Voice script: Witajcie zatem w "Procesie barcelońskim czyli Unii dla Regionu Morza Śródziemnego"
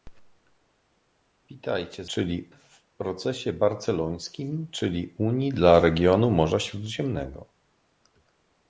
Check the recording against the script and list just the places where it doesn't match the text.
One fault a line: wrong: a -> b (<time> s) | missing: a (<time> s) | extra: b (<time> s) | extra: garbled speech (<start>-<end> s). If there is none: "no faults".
wrong: zatem -> czyli (2.1 s)